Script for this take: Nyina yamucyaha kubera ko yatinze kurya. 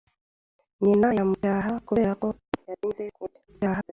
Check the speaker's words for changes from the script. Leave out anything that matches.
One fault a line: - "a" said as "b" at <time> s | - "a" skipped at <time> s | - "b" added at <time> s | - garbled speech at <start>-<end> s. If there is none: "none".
- garbled speech at 3.5-3.9 s